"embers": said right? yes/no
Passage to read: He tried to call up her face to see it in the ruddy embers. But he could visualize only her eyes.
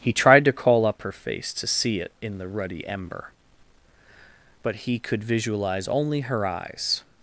no